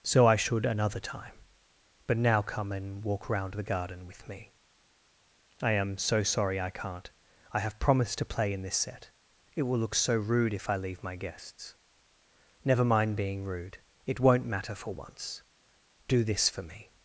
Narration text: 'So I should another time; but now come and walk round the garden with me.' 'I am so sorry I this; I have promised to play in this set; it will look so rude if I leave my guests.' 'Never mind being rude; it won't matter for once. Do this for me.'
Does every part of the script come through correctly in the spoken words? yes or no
no